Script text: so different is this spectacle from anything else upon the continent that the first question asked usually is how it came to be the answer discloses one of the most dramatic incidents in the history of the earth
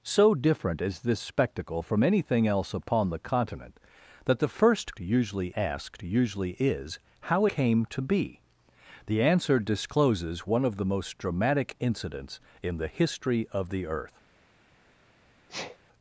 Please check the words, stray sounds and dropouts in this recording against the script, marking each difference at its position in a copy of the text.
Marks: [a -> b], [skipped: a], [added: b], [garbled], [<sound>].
so different is this spectacle from anything else upon the continent that the first [question -> usually] asked usually is how [skipped: it] came to be the answer discloses one of the most dramatic incidents in the history of the earth [sneeze]